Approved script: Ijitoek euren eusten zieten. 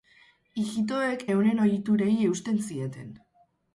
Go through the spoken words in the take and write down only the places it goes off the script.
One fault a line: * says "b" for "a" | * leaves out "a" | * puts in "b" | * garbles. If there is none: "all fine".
* puts in "ohiturei"